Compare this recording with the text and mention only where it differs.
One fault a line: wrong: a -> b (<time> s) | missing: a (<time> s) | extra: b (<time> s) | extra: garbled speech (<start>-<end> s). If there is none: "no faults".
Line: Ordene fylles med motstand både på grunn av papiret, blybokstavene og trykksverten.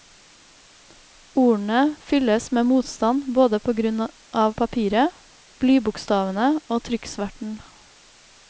no faults